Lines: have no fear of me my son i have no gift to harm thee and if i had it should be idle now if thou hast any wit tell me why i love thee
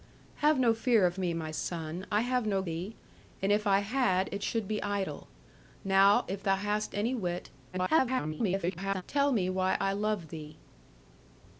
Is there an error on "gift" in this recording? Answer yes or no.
yes